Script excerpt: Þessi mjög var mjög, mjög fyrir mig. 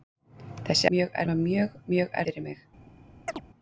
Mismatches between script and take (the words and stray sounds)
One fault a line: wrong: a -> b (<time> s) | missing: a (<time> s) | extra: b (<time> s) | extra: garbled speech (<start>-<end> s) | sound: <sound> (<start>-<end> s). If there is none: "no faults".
sound: chirp (3.3-3.4 s)